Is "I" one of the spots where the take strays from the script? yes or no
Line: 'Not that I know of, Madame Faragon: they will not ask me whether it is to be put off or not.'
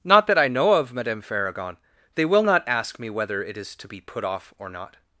no